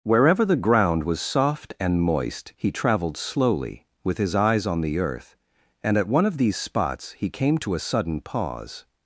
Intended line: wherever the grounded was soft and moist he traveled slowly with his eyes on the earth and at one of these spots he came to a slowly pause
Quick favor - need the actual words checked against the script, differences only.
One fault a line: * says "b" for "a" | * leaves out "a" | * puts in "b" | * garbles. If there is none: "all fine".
* says "ground" for "grounded"
* says "sudden" for "slowly"